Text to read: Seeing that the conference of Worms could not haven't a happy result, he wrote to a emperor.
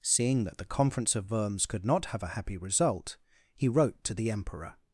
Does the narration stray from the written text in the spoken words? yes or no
yes